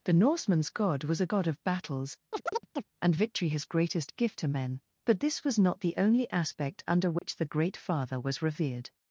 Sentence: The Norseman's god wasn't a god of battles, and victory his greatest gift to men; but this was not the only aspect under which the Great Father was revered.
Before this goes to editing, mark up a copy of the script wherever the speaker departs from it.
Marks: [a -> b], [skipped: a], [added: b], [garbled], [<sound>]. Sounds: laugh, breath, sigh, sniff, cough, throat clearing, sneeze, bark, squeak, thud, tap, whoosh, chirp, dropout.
The Norseman's god [wasn't -> was] a god of battles, [chirp] and victory his greatest gift to men; but this was not the only aspect under which [dropout] the Great Father was revered.